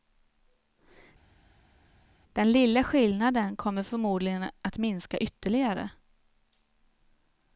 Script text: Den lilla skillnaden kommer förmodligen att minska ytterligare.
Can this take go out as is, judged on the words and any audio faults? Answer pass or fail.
pass